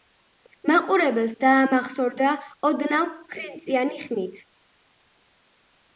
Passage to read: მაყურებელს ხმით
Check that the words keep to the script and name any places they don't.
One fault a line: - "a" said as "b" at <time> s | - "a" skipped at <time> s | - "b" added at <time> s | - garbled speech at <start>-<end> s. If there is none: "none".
- "დაამახსოვრდა ოდნავ ხრინწიანი" added at 1.4 s